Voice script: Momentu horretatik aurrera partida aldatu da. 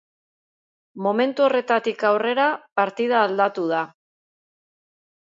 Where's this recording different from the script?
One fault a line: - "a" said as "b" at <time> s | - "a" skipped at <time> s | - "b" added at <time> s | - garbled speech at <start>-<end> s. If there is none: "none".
none